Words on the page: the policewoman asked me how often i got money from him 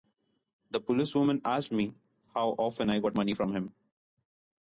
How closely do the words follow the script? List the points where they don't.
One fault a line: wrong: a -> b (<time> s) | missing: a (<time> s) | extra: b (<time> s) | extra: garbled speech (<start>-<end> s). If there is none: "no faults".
no faults